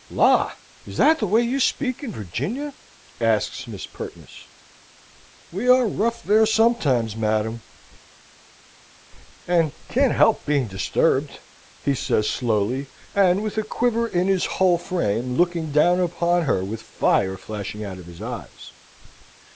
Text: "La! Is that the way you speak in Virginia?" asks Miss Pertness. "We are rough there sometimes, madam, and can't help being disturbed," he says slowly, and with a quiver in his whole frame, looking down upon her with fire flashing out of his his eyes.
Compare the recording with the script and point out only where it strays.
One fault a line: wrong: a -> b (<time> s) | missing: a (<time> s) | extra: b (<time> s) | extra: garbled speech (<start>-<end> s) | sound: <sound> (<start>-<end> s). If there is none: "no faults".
missing: his (18.2 s)